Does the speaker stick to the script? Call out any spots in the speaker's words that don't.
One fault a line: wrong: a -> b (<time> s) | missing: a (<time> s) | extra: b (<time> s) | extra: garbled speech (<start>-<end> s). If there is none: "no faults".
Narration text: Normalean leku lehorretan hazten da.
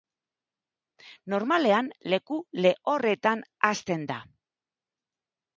no faults